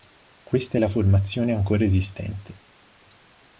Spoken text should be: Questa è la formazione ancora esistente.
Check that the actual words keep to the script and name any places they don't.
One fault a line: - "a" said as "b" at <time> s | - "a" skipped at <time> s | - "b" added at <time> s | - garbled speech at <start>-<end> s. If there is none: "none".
none